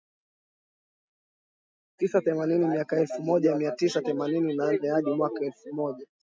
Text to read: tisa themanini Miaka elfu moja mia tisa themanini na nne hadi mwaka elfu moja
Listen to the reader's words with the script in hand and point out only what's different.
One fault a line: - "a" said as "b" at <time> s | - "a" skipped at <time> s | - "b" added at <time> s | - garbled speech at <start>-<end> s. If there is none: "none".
none